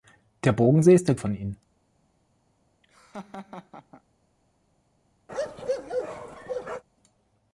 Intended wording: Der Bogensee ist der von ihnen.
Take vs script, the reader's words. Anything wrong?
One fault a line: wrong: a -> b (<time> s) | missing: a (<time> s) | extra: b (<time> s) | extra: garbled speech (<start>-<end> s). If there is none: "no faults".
no faults